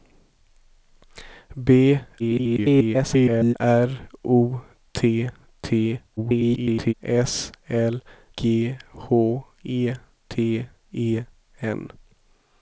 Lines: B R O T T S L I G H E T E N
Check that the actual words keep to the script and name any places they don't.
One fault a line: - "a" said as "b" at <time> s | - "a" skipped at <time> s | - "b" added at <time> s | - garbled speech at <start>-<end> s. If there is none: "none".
- garbled speech at 2.2-3.5 s
- garbled speech at 6.2-6.9 s
- "I" skipped at 8.0 s